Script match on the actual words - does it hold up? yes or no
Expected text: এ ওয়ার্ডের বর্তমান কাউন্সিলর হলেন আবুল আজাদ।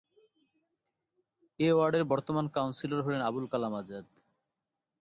no